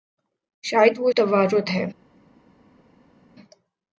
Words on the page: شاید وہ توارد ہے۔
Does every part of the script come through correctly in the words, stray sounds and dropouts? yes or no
yes